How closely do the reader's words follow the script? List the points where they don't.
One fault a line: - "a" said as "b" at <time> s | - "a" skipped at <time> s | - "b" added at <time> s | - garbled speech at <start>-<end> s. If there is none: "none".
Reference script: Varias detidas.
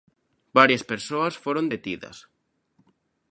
- "persoas foron" added at 0.9 s